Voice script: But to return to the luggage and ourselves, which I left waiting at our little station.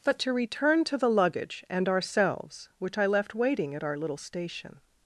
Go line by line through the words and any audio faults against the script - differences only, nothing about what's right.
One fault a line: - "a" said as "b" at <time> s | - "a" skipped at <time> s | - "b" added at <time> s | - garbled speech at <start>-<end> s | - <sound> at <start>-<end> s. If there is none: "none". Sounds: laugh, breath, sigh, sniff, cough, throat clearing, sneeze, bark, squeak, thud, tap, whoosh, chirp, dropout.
none